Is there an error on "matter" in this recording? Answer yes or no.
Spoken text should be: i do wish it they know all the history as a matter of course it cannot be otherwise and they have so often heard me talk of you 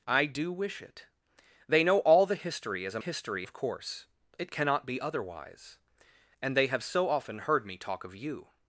yes